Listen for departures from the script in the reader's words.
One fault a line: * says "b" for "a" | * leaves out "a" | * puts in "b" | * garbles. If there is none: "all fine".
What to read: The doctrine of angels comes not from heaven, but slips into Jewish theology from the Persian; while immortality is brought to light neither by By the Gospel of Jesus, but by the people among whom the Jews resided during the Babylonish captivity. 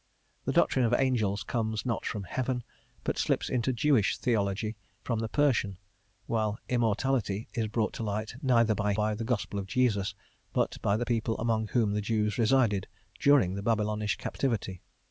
all fine